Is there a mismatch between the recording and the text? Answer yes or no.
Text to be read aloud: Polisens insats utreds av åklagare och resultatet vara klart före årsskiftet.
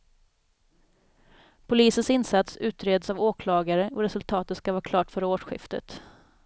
yes